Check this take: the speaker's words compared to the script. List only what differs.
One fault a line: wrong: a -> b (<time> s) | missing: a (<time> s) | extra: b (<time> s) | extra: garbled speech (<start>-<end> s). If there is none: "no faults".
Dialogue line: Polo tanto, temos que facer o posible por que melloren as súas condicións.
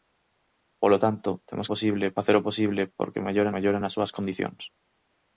wrong: que -> posible (1.7 s)
extra: melloren (3.5 s)